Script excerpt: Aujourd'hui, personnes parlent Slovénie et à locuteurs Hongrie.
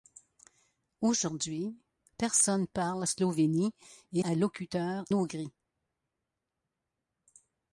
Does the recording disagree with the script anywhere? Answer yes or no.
no